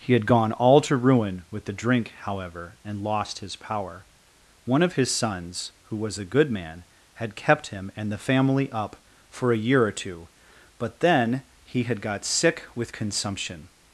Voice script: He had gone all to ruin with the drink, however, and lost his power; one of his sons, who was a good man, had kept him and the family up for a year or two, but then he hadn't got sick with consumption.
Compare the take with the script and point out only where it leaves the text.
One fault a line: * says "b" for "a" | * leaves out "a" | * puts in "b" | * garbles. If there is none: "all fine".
* says "had" for "hadn't"